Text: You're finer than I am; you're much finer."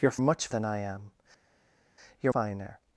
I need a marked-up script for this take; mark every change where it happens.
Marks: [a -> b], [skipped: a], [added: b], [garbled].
You're [finer -> much] than I am; you're [skipped: much] finer."